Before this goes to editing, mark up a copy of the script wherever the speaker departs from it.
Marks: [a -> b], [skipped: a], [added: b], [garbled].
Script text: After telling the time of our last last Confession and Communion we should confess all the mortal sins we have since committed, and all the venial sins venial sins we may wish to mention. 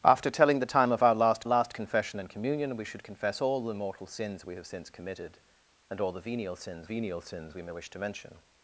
After telling the time of our last last Confession and Communion we should confess all the mortal sins we have since committed, and all the venial sins venial sins we may wish to mention.